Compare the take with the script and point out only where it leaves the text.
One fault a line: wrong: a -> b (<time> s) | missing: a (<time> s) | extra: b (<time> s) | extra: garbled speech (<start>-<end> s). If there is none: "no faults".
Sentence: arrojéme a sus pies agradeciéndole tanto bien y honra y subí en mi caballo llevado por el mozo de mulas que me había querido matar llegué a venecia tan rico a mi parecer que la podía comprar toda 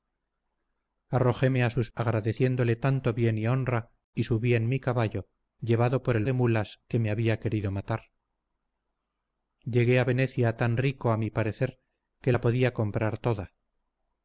missing: pies (1.9 s)
missing: mozo (6.3 s)